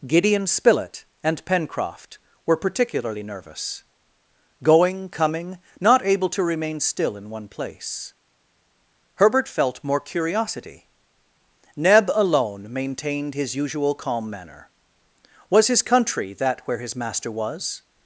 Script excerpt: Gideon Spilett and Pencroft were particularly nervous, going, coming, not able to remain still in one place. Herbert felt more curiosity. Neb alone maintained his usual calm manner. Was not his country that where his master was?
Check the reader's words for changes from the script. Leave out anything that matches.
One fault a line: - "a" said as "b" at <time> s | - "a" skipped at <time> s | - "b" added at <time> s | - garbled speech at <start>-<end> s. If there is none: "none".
- "not" skipped at 15.7 s